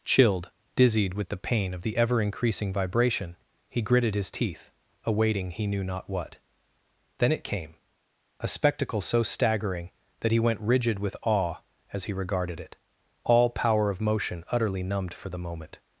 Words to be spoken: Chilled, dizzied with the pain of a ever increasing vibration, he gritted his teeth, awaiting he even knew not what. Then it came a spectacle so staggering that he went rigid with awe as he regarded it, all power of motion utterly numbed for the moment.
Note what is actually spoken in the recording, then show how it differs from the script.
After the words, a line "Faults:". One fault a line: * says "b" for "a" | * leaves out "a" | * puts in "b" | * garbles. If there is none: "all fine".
Chilled, dizzied with the pain of the ever increasing vibration, he gritted his teeth, awaiting he knew not what. Then it came a spectacle so staggering that he went rigid with awe as he regarded it, all power of motion utterly numbed for the moment.
Faults:
* says "the" for "a"
* leaves out "even"